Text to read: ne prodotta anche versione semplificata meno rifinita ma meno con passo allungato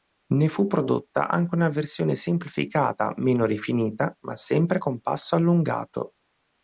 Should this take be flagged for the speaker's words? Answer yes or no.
yes